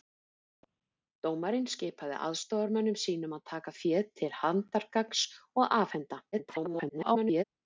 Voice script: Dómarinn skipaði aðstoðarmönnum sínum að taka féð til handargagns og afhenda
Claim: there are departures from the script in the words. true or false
true